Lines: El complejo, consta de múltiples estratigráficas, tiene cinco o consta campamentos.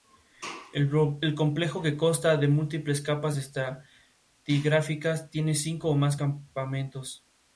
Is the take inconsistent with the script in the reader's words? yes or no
yes